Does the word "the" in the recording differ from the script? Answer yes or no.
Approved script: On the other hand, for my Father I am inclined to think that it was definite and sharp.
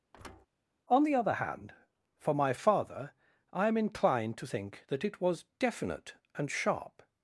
no